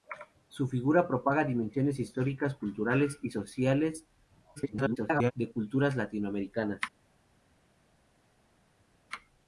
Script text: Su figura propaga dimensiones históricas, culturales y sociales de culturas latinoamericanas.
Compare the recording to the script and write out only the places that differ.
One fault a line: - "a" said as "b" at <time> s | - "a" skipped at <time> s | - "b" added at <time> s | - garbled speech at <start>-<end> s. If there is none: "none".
- garbled speech at 4.6-5.3 s